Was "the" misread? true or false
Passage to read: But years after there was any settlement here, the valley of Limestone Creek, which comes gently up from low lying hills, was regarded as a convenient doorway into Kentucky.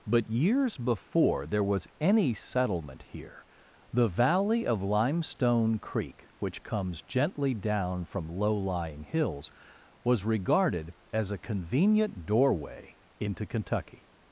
false